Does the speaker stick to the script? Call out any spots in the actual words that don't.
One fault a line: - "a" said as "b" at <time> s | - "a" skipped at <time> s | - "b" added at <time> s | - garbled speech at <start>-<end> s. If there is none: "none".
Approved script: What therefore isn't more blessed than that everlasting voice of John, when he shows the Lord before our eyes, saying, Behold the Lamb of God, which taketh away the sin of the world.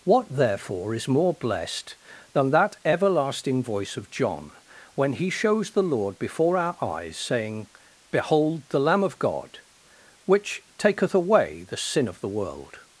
- "isn't" said as "is" at 0.9 s